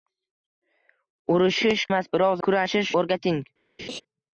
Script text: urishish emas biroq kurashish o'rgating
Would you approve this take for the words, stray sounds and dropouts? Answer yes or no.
no